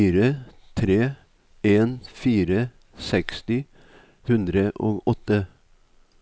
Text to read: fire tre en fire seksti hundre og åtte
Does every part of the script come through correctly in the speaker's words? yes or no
yes